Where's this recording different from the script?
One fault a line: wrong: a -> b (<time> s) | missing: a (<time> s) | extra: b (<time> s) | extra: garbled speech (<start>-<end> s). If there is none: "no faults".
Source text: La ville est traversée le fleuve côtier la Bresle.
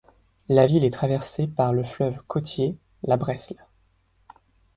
extra: par (1.5 s)